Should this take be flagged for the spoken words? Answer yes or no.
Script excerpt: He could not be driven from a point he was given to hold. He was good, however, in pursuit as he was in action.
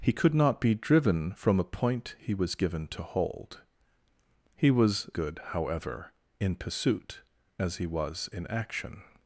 no